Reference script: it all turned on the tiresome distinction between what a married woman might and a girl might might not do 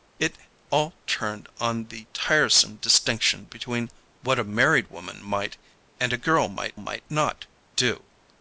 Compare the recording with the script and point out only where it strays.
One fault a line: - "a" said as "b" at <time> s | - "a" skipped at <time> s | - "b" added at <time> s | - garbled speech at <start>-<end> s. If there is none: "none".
none